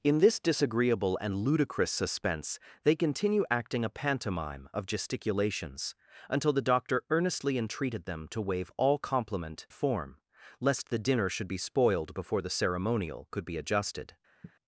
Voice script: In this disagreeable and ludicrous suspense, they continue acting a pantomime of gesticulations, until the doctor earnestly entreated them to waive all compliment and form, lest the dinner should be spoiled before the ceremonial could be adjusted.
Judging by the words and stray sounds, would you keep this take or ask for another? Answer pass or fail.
fail